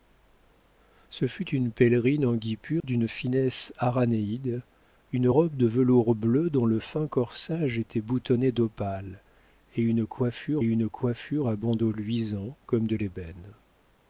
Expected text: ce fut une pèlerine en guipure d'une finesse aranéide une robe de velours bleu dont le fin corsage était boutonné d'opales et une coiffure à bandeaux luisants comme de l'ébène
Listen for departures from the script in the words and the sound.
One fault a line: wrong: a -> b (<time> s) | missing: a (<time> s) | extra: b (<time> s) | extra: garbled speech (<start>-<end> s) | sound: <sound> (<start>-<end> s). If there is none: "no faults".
sound: dropout (2.8-2.8 s)
extra: une coiffure (10.6 s)